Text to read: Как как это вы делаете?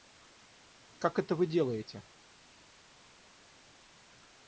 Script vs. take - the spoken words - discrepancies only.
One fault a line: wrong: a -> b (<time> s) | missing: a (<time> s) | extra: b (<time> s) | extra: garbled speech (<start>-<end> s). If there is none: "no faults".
missing: как (1.2 s)